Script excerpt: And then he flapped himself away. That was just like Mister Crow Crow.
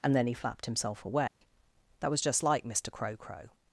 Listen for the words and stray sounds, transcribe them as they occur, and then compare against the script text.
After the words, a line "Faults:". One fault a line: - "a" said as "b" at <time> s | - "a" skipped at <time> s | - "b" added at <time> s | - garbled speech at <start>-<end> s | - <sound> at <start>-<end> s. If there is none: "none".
And then he flapped himself away. That was just like Mister Crow Crow.
Faults:
- dropout at 1.3-1.4 s